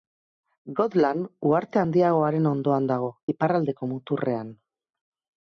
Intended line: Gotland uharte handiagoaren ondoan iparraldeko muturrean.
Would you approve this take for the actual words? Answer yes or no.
no